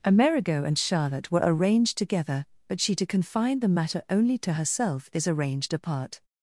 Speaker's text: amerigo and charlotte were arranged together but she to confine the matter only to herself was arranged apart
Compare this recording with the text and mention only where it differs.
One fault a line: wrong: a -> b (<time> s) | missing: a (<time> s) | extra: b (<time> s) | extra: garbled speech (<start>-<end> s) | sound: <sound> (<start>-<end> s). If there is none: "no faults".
wrong: was -> is (5.1 s)